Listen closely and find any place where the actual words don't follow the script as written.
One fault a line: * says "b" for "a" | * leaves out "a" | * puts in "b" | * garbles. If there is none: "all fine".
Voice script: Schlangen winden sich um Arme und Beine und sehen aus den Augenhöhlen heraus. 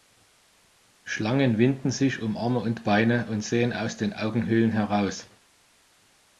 all fine